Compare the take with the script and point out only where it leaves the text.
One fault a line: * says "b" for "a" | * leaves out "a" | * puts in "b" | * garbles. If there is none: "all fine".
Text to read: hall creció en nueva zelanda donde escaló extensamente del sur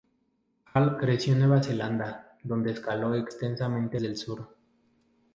all fine